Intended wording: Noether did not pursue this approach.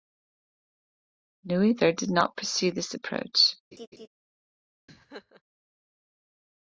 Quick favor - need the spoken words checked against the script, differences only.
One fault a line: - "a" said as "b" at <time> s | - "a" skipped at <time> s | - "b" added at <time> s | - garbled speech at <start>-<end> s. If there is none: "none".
none